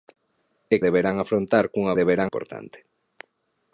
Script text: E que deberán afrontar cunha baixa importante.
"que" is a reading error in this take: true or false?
true